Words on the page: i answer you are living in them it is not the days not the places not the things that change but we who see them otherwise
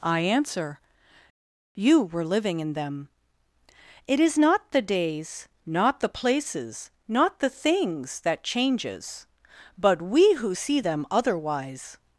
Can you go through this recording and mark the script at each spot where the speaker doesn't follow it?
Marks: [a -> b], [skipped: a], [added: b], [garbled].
i answer you [are -> were] living in them it is not the days not the places not the things that [change -> changes] but we who see them otherwise